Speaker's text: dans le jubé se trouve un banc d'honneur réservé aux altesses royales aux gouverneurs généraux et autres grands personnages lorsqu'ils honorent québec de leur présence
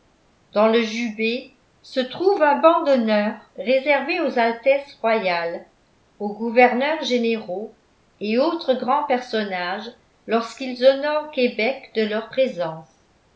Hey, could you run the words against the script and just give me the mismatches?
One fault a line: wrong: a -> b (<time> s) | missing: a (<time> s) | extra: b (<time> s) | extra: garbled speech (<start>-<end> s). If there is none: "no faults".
no faults